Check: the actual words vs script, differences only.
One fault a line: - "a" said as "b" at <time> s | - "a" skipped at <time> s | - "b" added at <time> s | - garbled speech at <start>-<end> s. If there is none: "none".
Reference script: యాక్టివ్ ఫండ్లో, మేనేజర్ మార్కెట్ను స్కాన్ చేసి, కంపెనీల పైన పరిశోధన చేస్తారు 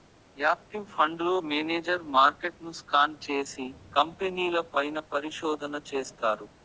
none